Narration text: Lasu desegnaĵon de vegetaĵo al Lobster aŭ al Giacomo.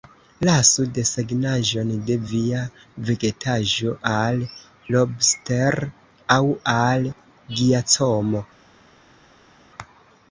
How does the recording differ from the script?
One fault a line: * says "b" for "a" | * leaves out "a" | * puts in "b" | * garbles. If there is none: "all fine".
* puts in "via"